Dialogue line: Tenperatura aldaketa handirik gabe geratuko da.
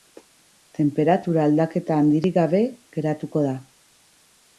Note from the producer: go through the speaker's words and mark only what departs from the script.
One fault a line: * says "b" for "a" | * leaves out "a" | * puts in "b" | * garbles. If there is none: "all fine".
all fine